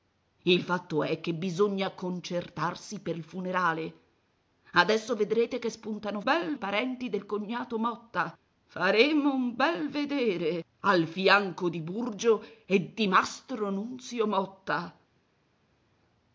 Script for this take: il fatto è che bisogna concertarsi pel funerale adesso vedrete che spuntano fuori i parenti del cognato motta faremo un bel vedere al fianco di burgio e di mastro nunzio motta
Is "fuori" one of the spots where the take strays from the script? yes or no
yes